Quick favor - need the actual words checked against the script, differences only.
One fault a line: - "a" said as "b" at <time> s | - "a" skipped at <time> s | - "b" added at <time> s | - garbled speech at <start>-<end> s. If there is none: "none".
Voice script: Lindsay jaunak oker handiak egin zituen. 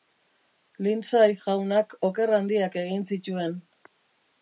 none